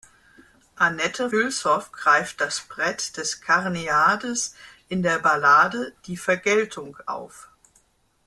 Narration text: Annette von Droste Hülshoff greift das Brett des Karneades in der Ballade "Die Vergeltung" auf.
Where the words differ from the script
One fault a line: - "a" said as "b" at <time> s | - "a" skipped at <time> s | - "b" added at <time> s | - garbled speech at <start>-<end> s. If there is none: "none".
- "von Droste" skipped at 1.3 s